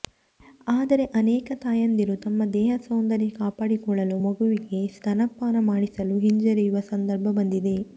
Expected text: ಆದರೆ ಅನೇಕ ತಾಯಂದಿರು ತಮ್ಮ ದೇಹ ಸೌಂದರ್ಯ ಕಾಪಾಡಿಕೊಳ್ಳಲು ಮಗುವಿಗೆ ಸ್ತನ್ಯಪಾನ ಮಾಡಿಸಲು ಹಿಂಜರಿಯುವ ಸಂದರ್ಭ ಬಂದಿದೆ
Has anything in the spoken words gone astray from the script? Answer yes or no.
no